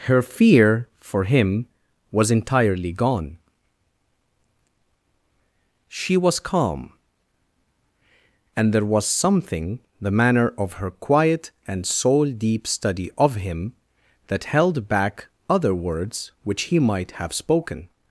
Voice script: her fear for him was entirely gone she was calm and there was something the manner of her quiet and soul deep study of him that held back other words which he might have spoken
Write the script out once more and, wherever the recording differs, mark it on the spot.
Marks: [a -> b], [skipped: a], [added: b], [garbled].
her fear for him was entirely gone she was calm and there was something the manner of her quiet and soul deep study of him that held back other words which he might have spoken